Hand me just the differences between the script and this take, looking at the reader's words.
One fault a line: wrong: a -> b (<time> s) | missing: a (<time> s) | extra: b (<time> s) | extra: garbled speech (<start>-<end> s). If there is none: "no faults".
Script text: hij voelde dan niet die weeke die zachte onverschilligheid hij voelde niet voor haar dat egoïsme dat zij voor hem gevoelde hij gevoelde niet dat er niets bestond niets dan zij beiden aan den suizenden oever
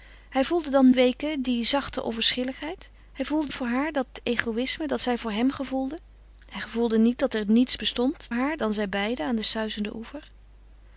missing: niet die (0.9 s)
missing: niet (3.5 s)
wrong: niets -> haar (8.3 s)